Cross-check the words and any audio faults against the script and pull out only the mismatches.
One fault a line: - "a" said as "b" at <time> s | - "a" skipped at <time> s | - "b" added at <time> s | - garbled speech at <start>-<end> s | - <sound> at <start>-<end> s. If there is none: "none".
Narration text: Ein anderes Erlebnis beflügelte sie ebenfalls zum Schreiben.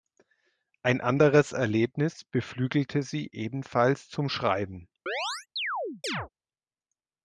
- chirp at 5.1-6.3 s